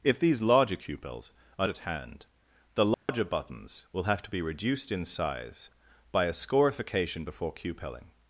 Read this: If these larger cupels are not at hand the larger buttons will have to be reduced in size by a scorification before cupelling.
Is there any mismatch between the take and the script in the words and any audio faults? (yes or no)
yes